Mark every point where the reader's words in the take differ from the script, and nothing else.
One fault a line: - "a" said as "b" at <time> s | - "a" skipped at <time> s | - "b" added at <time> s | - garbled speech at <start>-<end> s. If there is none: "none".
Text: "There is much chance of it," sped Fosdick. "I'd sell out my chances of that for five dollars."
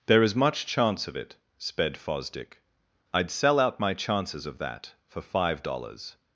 none